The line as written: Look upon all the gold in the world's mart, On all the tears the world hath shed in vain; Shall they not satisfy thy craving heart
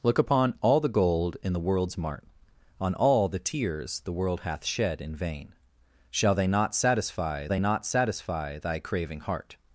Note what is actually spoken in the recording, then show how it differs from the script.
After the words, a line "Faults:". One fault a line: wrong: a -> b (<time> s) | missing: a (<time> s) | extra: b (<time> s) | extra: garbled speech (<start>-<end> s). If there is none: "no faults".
Look upon all the gold in the world's mart, On all the tears the world hath shed in vain; Shall they not satisfy they not satisfy thy craving heart
Faults:
extra: they not satisfy (7.5 s)